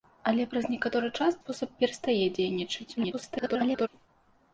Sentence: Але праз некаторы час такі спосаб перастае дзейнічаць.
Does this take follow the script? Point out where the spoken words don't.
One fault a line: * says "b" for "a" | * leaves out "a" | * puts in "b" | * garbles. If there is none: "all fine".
* leaves out "такі"
* garbles